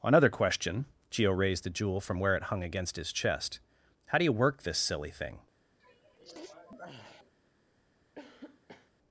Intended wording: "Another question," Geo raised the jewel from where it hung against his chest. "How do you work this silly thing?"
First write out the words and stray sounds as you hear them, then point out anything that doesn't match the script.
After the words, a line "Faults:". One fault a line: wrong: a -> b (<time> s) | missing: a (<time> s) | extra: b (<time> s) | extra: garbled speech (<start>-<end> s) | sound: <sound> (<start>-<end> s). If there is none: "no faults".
"Another question," Geo raised the jewel from where it hung against his chest. "How do you work this silly thing?"
Faults:
sound: sneeze (5.8-7.3 s)
sound: cough (8.2-8.9 s)